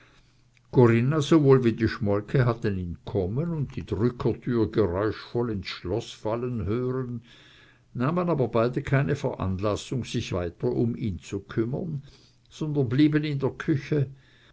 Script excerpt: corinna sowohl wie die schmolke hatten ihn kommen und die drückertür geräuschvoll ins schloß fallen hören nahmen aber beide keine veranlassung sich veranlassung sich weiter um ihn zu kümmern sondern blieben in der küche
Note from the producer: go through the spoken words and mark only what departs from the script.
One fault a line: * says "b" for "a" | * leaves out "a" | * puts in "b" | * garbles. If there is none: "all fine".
* leaves out "veranlassung sich"